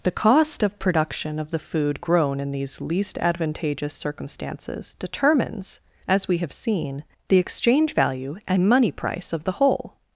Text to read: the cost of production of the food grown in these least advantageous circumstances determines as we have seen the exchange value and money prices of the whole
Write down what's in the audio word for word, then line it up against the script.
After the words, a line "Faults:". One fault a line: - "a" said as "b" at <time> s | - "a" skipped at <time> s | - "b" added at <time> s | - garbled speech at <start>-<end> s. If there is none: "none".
the cost of production of the food grown in these least advantageous circumstances determines as we have seen the exchange value and money price of the whole
Faults:
- "prices" said as "price" at 8.9 s